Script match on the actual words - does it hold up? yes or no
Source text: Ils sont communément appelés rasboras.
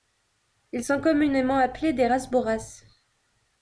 no